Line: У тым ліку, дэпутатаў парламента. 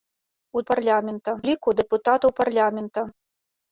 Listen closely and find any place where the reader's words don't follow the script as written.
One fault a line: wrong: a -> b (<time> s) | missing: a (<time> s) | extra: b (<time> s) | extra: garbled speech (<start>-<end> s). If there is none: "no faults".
wrong: тым -> парламента (0.7 s)